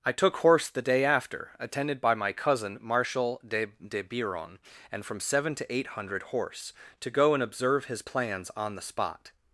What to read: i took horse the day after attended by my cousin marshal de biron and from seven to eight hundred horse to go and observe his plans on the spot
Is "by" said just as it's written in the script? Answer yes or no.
yes